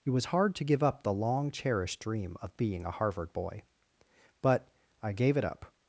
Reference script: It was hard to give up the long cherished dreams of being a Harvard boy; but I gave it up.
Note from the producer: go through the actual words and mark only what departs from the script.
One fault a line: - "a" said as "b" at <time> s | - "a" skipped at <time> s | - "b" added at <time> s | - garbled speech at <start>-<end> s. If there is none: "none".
- "dreams" said as "dream" at 2.0 s